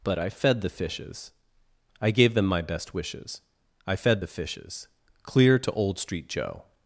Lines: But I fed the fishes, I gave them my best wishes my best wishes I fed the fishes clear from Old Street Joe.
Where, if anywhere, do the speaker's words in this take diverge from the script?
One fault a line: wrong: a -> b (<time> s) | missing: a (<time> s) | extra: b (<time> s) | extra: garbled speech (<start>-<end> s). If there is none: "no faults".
missing: my best wishes (3.4 s)
wrong: from -> to (5.6 s)